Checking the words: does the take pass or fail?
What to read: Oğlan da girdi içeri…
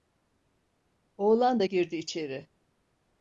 pass